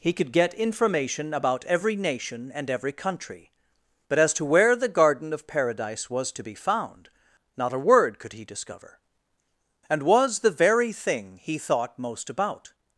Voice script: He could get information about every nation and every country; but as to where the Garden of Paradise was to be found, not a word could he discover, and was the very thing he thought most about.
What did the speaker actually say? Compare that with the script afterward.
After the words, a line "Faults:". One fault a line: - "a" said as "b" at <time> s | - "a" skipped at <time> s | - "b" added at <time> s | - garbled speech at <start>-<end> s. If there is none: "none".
He could get information about every nation and every country; but as to where the Garden of Paradise was to be found, not a word could he discover, and was the very thing he thought most about.
Faults:
none